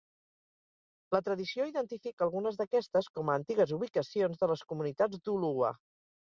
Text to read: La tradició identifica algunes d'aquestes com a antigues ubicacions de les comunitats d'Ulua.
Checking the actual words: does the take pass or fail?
pass